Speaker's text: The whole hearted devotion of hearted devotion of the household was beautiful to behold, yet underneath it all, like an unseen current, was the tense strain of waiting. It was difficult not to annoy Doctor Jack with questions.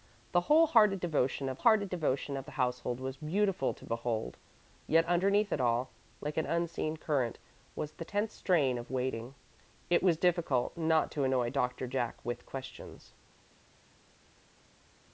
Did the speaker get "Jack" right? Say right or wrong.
right